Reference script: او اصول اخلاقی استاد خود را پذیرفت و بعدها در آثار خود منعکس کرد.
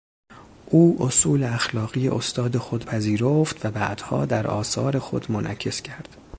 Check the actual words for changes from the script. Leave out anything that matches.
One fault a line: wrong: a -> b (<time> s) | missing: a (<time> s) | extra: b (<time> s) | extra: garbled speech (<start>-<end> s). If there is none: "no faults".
missing: را (2.9 s)